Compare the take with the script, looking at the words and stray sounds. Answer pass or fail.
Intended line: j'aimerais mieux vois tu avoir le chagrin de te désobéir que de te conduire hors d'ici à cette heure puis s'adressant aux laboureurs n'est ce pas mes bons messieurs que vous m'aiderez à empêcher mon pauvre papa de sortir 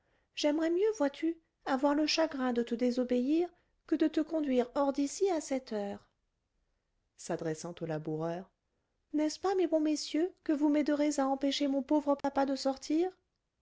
fail